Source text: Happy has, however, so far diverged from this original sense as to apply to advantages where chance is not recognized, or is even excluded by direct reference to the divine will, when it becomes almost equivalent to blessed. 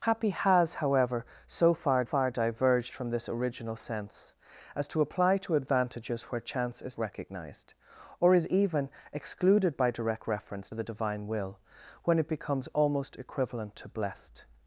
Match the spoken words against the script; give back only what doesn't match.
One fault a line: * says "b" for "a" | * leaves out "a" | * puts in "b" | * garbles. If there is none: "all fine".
* puts in "far"
* leaves out "not"
* leaves out "to"